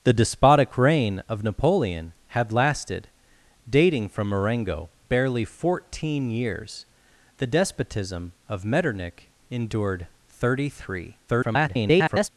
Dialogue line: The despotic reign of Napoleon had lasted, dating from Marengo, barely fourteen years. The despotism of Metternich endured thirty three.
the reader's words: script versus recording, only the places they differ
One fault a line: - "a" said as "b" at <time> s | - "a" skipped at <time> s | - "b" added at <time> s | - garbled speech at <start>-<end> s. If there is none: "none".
- garbled speech at 11.3-12.3 s